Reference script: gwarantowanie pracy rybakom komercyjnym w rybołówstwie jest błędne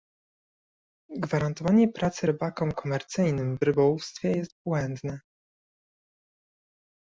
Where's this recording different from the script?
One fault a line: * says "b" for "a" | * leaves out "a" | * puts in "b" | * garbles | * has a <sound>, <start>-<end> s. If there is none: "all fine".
all fine